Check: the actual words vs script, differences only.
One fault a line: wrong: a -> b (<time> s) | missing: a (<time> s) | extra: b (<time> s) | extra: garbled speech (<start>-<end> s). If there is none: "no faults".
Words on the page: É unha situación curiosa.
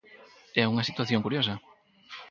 no faults